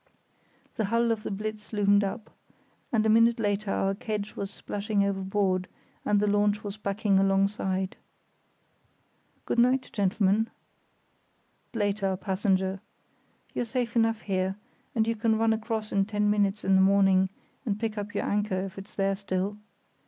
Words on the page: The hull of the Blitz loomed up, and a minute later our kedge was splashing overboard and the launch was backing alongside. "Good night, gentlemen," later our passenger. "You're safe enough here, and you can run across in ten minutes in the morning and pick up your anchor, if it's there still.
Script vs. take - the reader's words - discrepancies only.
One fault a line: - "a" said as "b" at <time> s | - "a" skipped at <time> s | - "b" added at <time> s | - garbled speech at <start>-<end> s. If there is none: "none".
none